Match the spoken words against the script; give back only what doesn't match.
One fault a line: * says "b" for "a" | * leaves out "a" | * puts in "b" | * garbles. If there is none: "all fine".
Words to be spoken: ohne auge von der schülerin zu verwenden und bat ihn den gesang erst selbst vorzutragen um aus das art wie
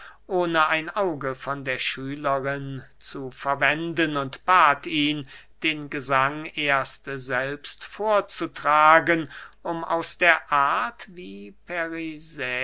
* puts in "ein"
* says "der" for "das"